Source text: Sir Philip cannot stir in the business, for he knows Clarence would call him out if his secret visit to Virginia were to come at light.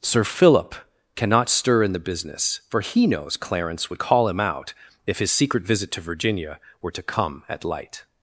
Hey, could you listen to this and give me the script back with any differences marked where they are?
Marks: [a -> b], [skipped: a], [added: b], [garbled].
Sir Philip cannot stir in the business, for he knows Clarence would call him out if his secret visit to Virginia were to come at light.